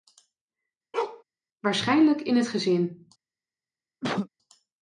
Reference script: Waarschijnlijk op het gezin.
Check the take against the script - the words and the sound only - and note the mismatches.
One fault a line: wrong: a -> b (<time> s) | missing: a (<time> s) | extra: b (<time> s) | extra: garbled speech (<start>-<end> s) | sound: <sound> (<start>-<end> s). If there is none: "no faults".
sound: bark (0.9-1.2 s)
wrong: op -> in (2.2 s)
sound: cough (4.0-4.3 s)